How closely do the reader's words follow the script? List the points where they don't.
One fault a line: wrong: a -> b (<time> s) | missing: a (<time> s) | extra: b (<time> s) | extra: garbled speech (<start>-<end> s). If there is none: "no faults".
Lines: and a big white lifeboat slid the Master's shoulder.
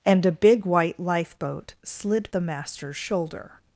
no faults